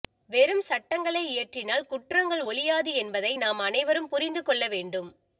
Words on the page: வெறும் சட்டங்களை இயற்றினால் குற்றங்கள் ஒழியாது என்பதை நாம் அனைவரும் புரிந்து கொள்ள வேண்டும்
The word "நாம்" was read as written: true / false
true